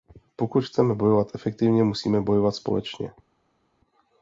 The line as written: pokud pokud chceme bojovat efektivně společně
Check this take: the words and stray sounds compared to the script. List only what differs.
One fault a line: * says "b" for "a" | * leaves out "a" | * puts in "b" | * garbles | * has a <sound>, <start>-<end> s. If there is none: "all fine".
* leaves out "pokud"
* puts in "musíme bojovat"